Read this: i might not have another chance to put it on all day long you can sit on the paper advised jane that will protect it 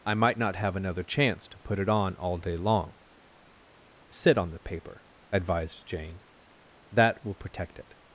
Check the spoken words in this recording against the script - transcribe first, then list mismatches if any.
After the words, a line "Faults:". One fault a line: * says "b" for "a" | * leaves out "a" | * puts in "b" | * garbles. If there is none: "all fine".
i might not have another chance to put it on all day long sit on the paper advised jane that will protect it
Faults:
* leaves out "you can"